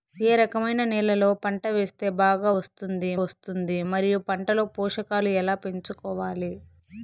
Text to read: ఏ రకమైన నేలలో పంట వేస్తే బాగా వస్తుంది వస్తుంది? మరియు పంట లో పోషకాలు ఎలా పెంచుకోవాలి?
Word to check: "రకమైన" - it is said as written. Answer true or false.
true